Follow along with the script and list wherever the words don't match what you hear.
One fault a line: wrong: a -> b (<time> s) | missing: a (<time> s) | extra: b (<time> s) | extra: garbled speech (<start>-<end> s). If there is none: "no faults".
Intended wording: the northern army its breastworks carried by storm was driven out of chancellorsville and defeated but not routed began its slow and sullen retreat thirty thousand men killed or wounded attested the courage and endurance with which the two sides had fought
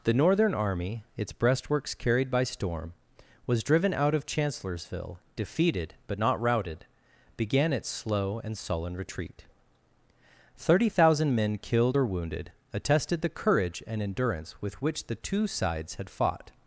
missing: and (5.2 s)